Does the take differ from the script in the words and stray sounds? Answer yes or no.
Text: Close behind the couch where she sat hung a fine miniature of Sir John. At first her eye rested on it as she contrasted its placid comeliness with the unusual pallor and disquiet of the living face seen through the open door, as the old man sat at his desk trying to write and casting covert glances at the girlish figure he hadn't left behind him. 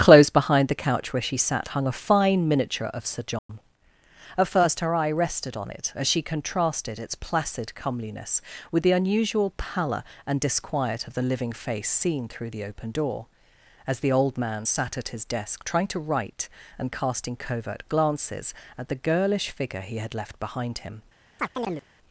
yes